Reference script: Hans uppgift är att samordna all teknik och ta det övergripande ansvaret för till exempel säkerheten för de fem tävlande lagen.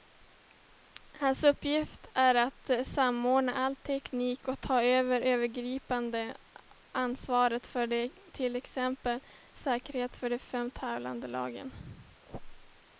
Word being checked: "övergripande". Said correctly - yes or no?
yes